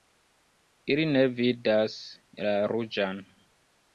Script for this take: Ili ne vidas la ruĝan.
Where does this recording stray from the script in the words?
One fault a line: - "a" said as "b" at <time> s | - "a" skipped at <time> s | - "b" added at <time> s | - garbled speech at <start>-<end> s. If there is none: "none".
none